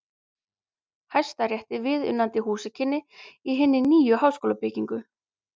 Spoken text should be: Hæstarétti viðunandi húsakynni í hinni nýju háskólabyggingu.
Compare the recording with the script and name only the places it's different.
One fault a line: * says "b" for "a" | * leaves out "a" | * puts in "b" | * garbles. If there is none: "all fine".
all fine